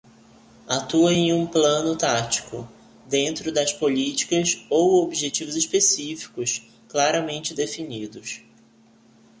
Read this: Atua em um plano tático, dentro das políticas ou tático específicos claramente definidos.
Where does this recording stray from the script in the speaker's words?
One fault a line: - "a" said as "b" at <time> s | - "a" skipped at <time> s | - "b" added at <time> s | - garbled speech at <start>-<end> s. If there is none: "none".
- "tático" said as "objetivos" at 5.0 s